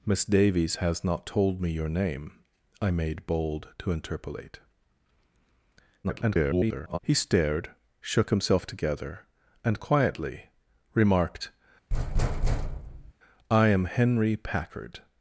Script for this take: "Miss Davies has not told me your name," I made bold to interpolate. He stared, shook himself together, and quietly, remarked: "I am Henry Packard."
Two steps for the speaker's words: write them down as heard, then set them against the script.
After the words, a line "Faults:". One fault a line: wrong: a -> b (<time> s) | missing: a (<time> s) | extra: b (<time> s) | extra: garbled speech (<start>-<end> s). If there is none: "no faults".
"Miss Davies has not told me your name," I made bold to interpolate. [garbled] He stared, shook himself together, and quietly, remarked: "I am Henry Packard."
Faults:
extra: garbled speech (6.0-7.0 s)